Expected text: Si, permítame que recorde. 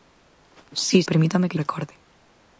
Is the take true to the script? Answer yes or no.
yes